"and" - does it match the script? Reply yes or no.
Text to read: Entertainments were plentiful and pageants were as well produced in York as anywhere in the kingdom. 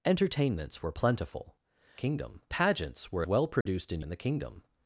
no